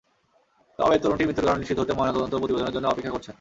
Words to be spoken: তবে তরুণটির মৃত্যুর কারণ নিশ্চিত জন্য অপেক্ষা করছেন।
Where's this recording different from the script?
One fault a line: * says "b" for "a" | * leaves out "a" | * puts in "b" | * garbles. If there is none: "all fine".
* puts in "হতে ময়নাতদন্ত প্রতিবেদনের"